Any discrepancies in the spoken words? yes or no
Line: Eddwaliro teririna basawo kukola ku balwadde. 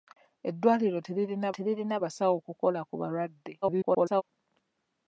yes